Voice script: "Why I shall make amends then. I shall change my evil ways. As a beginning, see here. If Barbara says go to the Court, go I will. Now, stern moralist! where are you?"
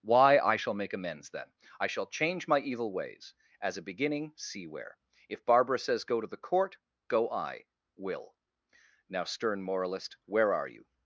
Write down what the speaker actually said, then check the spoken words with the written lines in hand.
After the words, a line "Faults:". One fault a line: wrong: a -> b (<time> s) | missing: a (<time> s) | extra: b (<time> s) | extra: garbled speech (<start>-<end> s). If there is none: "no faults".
"Why I shall make amends then. I shall change my evil ways. As a beginning, see where. If Barbara says go to the Court, go I will. Now, stern moralist! where are you?"
Faults:
wrong: here -> where (4.7 s)